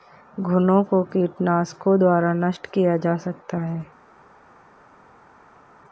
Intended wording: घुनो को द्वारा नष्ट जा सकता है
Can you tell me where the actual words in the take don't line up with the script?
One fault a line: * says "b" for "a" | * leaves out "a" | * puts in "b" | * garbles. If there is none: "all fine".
* puts in "कीटनाशकों"
* puts in "किया"